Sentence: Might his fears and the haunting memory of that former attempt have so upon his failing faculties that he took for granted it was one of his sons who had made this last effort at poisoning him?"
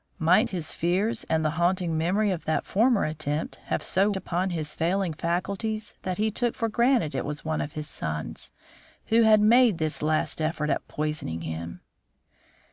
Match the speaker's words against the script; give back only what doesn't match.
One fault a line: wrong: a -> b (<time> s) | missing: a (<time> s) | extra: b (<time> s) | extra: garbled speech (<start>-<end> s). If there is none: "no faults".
no faults